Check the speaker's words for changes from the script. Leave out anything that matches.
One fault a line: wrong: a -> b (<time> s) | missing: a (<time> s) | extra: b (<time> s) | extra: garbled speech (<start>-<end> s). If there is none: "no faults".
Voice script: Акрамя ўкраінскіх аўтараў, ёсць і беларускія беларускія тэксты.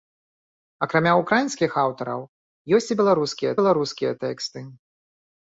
no faults